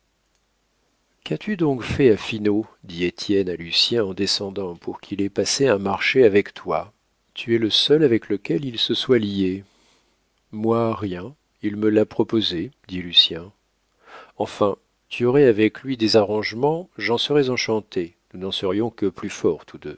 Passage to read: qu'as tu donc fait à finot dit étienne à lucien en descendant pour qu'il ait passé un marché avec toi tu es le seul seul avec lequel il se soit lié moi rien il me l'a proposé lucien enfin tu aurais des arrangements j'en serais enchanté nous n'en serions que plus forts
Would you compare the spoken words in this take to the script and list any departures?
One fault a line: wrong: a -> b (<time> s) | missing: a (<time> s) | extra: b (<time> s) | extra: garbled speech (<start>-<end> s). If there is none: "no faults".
missing: seul (8.0 s)
extra: dit (12.9 s)
extra: avec lui (15.4 s)